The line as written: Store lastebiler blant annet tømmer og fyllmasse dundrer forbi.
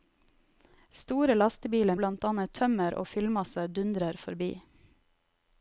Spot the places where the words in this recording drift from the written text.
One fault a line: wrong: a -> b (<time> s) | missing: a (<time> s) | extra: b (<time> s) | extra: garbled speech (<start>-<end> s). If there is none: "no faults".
no faults